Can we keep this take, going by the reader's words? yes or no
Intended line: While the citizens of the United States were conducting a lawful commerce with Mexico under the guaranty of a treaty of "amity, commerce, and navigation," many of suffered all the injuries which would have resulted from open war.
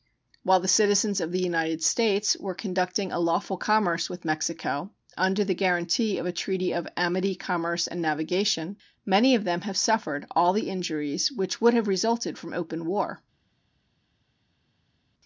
no